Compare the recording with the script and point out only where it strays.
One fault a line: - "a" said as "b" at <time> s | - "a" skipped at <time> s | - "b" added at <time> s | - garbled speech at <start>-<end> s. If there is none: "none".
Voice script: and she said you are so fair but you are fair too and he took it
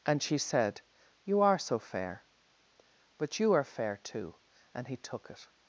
none